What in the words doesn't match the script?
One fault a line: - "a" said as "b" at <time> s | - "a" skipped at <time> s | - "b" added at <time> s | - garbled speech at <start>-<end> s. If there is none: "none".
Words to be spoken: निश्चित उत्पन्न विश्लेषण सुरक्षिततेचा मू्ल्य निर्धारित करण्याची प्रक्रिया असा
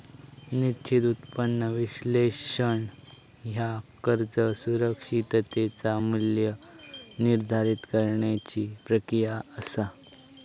- "ह्या कर्ज" added at 3.4 s